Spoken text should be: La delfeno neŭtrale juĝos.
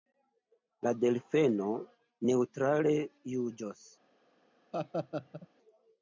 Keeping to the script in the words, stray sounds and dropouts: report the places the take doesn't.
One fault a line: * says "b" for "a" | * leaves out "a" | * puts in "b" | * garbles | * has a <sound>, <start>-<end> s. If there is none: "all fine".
* has a laugh, 4.7-5.5 s